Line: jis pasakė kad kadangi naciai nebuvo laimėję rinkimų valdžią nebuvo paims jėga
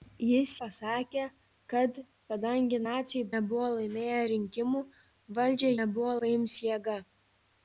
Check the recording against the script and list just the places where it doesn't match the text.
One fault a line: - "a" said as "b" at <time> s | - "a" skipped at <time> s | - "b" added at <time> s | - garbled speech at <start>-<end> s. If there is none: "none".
none